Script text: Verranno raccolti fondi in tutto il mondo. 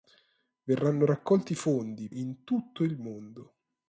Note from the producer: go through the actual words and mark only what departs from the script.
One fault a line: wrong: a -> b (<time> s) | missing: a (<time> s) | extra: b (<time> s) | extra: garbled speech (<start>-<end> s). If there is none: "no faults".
no faults